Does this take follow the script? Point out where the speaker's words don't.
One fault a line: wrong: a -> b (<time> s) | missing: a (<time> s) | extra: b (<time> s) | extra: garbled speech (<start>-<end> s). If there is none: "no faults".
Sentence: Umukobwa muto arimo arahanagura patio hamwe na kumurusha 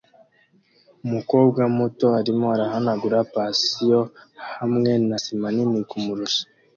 extra: sima nini (5.2 s)